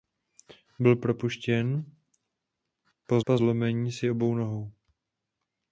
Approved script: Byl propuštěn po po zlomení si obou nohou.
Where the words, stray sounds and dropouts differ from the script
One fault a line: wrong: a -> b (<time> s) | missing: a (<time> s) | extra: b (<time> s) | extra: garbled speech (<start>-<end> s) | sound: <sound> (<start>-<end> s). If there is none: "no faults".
no faults